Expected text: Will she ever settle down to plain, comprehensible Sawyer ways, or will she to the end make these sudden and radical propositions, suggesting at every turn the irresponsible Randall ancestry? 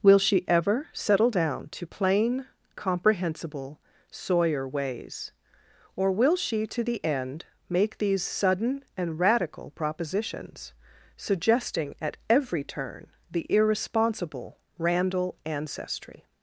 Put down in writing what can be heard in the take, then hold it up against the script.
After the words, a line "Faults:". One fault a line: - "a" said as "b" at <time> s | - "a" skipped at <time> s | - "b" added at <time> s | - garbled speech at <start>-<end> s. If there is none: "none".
Will she ever settle down to plain, comprehensible Sawyer ways, or will she to the end make these sudden and radical propositions, suggesting at every turn the irresponsible Randall ancestry?
Faults:
none